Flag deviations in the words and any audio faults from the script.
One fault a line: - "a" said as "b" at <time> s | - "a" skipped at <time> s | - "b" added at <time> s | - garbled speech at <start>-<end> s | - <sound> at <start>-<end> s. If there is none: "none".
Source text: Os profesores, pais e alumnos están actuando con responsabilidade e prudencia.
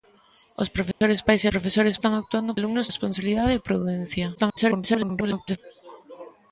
- dropout at 0.9-1.0 s
- "alumnos" said as "profesores" at 1.5 s
- "con" said as "alumnos" at 2.6 s
- garbled speech at 4.4-5.6 s